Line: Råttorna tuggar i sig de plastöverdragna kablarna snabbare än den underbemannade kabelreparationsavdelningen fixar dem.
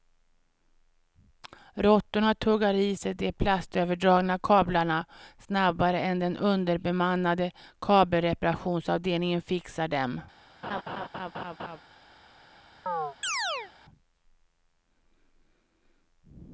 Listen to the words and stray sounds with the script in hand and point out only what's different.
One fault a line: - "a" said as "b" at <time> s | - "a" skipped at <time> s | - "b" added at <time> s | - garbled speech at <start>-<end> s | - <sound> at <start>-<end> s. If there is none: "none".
- laugh at 10.6-11.8 s
- chirp at 12.9-13.7 s